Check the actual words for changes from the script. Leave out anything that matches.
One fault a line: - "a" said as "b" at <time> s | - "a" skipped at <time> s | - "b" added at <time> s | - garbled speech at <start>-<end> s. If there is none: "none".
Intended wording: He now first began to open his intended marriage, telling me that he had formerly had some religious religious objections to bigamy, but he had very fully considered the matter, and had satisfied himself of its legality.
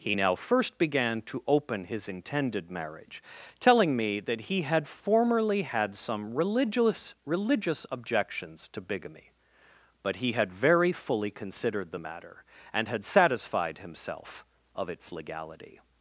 none